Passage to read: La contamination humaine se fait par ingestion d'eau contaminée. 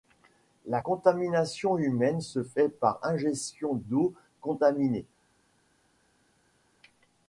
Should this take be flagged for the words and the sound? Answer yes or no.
no